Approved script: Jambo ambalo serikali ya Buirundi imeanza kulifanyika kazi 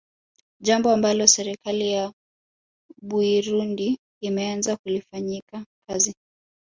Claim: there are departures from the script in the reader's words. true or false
false